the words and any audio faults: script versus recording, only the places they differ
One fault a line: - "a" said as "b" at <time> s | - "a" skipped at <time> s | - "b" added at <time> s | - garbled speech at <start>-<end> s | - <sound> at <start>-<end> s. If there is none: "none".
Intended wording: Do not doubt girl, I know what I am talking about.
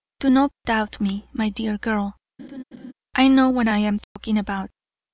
- "me my dear" added at 1.0 s
- laugh at 2.4-2.9 s
- dropout at 4.0-4.2 s